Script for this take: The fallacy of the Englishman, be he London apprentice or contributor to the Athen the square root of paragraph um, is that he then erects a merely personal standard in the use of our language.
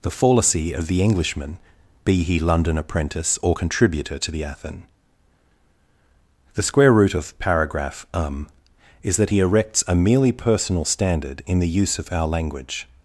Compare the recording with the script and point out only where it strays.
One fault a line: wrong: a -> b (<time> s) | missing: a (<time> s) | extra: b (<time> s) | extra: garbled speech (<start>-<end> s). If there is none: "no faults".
missing: then (9.4 s)